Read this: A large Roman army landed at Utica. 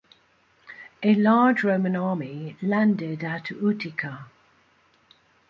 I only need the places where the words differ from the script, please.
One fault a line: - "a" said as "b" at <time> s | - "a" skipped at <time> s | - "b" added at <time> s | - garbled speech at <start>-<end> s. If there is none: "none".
none